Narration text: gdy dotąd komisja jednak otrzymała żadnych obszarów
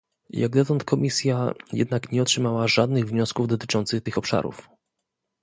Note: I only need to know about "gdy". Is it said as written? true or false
false